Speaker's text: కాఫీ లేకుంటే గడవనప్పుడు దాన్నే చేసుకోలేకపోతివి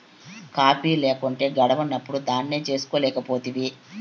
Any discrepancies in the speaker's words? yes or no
no